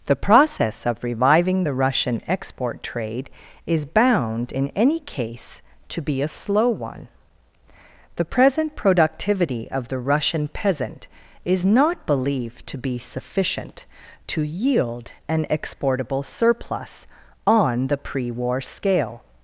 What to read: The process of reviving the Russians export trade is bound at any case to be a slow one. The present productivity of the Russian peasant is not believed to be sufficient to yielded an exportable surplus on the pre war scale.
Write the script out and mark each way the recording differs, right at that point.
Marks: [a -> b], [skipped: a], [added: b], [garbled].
The process of reviving the [Russians -> Russian] export trade is bound [at -> in] any case to be a slow one. The present productivity of the Russian peasant is not believed to be sufficient to [yielded -> yield] an exportable surplus on the pre war scale.